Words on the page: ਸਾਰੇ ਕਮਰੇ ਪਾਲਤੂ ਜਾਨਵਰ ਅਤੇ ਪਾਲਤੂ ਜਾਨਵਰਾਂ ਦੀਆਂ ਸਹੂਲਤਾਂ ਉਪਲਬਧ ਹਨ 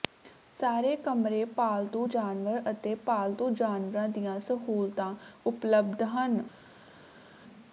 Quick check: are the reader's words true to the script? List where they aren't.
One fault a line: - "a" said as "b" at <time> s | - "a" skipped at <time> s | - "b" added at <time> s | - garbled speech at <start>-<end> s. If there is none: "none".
none